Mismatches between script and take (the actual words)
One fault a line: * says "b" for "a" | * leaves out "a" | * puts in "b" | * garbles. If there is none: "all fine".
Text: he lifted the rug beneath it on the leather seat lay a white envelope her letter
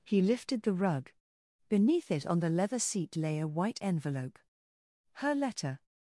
all fine